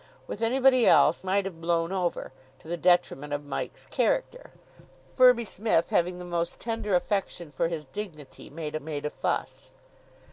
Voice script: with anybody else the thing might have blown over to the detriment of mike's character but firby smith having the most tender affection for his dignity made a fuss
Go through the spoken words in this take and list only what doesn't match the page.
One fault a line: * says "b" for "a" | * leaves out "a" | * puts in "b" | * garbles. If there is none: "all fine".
* leaves out "the thing"
* leaves out "but"
* puts in "made"